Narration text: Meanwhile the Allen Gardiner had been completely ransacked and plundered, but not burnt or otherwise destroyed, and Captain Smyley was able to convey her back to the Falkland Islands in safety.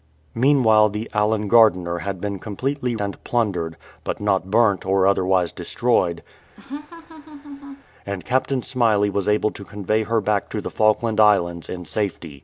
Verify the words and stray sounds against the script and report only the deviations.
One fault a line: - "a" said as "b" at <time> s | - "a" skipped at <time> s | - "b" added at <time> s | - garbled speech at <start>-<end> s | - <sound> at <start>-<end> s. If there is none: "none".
- "ransacked" skipped at 3.0 s
- laugh at 6.6-7.8 s